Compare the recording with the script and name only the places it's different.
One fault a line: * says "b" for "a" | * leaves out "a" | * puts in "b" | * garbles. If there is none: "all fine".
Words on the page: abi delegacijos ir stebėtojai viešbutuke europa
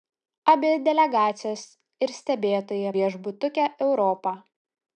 all fine